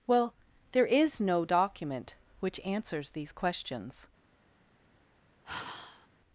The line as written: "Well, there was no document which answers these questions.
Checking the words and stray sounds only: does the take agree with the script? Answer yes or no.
no